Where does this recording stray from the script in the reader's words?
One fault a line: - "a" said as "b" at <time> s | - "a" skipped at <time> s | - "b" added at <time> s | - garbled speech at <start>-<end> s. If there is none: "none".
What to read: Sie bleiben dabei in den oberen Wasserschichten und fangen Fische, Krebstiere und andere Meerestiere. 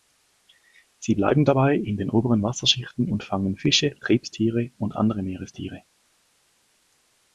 none